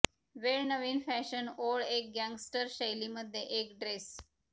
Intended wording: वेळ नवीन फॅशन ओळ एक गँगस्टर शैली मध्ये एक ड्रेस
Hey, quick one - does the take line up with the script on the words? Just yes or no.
yes